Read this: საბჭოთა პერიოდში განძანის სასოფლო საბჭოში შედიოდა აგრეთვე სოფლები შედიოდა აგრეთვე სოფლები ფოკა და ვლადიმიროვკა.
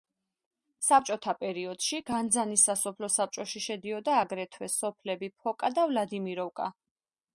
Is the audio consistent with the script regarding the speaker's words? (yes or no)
no